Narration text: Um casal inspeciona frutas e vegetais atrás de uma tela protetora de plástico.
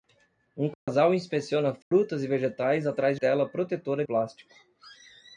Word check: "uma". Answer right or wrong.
wrong